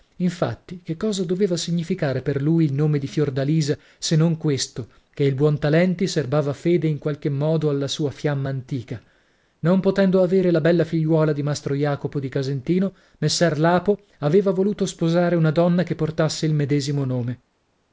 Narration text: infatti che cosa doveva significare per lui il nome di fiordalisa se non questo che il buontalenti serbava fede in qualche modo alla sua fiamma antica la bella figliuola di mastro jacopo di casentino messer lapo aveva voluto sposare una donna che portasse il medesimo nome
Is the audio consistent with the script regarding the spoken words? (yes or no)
no